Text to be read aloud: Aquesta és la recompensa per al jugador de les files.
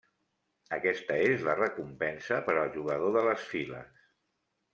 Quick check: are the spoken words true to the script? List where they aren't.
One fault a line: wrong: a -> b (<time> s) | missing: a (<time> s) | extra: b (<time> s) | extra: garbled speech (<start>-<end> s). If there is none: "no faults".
no faults